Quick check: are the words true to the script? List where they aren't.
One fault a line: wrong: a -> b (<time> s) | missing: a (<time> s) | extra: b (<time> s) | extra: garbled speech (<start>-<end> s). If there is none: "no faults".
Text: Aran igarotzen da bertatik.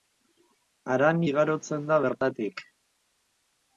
no faults